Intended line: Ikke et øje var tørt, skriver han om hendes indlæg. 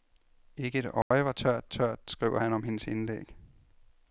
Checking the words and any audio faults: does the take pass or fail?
fail